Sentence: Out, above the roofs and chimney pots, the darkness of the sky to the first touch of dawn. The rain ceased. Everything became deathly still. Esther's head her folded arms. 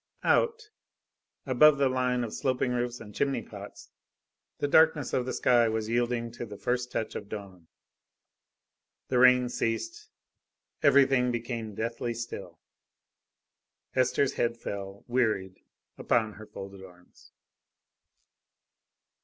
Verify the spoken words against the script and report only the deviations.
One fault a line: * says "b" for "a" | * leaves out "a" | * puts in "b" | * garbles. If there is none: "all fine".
* puts in "line of sloping"
* puts in "was yielding"
* puts in "fell wearied upon"